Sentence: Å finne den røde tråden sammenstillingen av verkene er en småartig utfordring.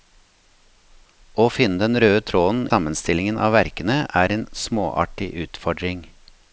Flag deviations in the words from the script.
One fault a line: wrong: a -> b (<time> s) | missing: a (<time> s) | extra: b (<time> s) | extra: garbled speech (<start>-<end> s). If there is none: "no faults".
no faults